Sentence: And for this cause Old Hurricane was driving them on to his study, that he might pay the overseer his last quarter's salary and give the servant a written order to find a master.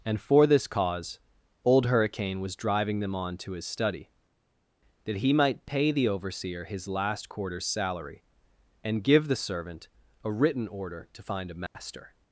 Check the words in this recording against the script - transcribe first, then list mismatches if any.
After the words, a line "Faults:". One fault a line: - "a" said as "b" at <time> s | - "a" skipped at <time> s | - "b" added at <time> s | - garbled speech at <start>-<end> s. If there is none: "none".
And for this cause Old Hurricane was driving them on to his study, that he might pay the overseer his last quarter's salary and give the servant a written order to find a master.
Faults:
none